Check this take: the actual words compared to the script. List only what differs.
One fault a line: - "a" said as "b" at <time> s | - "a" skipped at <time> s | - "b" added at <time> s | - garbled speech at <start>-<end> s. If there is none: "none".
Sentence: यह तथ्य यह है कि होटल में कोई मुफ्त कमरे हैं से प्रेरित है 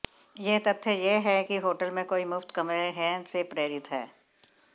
none